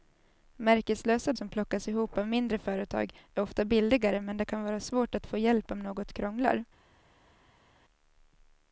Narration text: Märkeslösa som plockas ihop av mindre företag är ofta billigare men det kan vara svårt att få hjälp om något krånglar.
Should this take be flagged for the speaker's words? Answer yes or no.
no